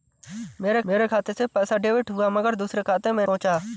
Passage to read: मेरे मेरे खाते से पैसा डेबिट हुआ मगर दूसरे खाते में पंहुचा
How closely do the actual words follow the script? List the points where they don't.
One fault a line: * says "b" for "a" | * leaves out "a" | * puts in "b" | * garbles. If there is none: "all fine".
all fine